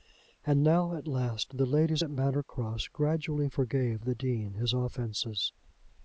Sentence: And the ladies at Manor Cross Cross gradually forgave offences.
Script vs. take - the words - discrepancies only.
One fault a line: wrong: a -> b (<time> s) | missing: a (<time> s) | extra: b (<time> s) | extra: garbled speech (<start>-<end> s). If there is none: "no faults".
extra: now at last (0.6 s)
missing: Cross (2.9 s)
extra: the Dean his (4.0 s)